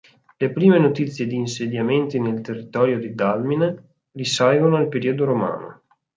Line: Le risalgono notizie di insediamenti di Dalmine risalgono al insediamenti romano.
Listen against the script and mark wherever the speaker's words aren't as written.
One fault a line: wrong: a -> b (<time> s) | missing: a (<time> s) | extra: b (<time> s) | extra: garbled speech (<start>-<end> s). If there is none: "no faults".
wrong: risalgono -> prime (0.5 s)
extra: nel territorio (2.2 s)
wrong: insediamenti -> periodo (4.9 s)